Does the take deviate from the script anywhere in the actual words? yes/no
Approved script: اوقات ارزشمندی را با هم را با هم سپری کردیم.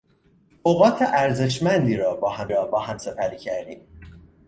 no